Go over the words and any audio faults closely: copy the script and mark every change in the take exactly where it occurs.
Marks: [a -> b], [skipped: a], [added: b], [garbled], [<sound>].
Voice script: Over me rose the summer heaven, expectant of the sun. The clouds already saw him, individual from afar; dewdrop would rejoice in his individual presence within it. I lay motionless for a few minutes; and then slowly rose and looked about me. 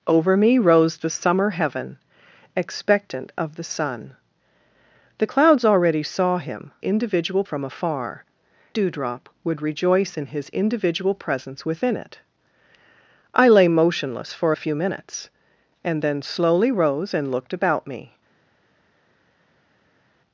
Over me rose the summer heaven, expectant of the sun. The clouds already saw him, individual from afar; dewdrop would rejoice in his individual presence within it. I lay motionless for a few minutes; and then slowly rose and looked about me.